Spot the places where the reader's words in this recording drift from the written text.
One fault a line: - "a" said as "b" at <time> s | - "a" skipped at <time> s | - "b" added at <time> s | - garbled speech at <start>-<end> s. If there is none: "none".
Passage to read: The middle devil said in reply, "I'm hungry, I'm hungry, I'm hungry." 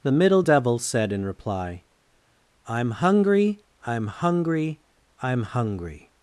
none